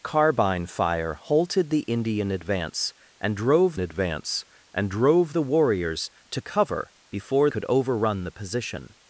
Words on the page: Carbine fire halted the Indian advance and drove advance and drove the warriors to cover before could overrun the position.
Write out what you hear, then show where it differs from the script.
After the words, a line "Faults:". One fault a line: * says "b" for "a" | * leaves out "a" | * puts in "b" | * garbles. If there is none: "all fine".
Carbine fire halted the Indian advance and drove advance and drove the warriors to cover before could overrun the position.
Faults:
all fine